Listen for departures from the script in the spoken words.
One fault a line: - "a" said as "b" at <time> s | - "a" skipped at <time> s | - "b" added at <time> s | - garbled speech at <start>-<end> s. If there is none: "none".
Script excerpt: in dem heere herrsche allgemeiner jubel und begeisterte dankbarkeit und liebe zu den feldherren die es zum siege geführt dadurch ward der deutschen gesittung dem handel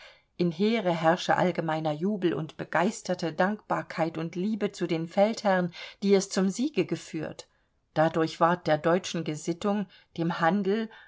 - "dem" skipped at 0.5 s